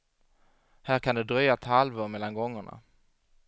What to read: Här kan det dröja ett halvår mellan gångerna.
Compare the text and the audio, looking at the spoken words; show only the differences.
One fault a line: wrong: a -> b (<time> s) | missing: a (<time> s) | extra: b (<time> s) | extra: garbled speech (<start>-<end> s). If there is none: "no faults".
no faults